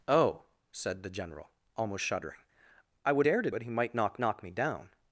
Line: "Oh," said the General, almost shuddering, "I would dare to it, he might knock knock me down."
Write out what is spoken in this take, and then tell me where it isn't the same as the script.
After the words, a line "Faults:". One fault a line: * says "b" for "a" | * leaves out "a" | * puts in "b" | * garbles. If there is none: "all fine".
"Oh," said the General, almost shuddering, "I would dare to it, he might knock knock me down."
Faults:
all fine